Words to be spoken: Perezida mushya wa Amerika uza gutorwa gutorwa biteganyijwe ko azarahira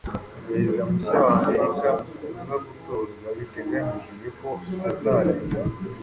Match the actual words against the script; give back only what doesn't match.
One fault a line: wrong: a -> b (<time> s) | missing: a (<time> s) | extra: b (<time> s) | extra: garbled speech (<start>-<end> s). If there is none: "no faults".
missing: gutorwa (3.3 s)